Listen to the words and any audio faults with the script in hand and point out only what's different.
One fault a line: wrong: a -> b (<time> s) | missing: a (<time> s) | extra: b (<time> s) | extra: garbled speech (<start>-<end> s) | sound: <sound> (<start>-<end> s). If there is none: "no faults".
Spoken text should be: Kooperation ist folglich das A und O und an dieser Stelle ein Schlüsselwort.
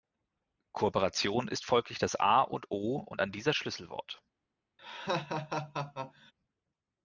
missing: Stelle ein (3.5 s)
sound: laugh (4.8-6.3 s)